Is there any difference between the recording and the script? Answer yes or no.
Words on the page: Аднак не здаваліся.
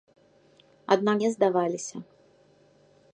no